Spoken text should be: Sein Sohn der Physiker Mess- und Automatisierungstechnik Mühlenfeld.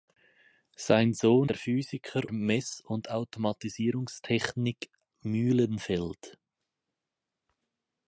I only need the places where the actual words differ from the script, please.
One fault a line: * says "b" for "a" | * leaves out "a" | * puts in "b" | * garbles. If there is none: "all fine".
all fine